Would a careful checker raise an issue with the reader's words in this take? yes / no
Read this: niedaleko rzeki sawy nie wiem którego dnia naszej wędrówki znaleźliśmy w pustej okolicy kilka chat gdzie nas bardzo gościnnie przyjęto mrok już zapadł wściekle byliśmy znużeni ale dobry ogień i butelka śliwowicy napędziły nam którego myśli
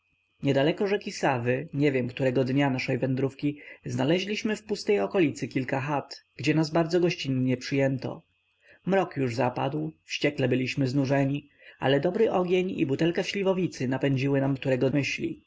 no